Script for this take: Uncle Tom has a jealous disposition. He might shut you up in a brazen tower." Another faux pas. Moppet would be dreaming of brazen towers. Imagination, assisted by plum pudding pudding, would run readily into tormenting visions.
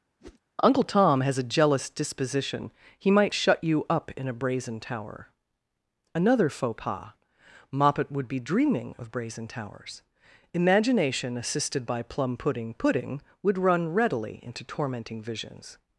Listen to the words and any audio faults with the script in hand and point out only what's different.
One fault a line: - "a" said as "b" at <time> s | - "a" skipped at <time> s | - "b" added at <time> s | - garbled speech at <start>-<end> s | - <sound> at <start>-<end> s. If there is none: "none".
- whoosh at 0.2-0.4 s